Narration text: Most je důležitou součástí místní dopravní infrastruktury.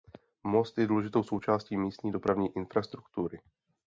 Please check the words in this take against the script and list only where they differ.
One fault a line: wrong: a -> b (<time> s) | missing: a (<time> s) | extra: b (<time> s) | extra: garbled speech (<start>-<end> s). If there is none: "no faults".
no faults